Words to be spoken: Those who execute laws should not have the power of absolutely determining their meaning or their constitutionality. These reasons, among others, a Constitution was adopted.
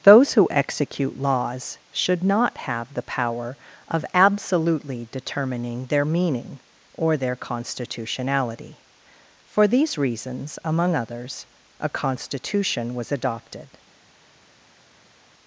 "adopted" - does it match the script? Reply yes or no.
yes